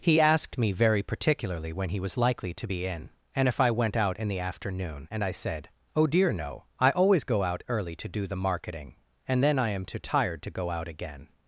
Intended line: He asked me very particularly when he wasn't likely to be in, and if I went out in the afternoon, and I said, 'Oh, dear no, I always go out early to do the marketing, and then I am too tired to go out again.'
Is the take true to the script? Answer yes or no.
no